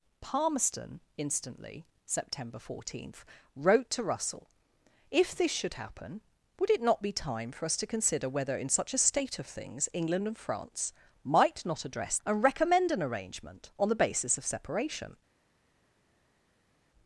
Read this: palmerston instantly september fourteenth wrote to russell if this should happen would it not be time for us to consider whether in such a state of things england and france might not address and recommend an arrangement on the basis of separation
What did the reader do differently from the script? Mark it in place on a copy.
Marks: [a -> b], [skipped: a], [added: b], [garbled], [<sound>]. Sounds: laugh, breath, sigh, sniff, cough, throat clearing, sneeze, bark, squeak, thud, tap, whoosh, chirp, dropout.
palmerston instantly september fourteenth wrote to russell if this should happen would it not be time for us to consider whether in such a state of things england and france might not address and recommend an arrangement on the basis of separation